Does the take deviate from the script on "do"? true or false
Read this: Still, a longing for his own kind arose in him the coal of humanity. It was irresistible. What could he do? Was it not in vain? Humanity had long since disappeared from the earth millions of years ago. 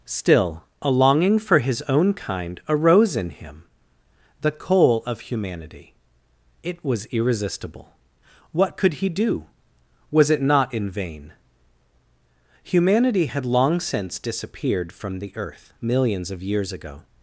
false